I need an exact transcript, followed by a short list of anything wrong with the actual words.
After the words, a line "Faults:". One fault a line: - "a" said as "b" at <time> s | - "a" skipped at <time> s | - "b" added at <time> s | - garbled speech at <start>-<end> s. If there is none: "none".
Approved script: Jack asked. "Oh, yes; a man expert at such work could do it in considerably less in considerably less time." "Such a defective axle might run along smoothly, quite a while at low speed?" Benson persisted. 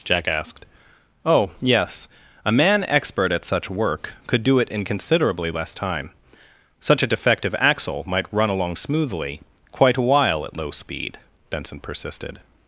Jack asked. "Oh, yes; a man expert at such work could do it in considerably less time." "Such a defective axle might run along smoothly, quite a while at low speed?" Benson persisted.
Faults:
- "in considerably less" skipped at 5.7 s